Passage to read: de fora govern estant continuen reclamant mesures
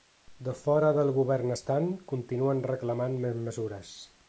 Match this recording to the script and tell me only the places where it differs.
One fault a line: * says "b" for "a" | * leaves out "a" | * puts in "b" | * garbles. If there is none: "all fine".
* puts in "del"
* puts in "més"